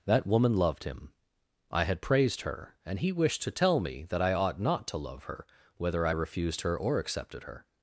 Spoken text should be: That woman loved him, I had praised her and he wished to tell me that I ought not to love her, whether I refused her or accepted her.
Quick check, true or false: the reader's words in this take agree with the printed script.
true